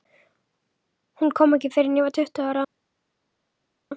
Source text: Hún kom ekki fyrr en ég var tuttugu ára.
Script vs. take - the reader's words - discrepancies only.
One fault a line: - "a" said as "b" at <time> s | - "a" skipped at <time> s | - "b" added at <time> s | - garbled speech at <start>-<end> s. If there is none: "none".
none